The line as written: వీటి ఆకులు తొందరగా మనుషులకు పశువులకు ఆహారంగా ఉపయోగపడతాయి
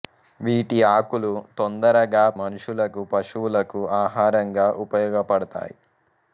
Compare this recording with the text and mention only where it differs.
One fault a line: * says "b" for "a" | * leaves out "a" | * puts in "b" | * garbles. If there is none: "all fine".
all fine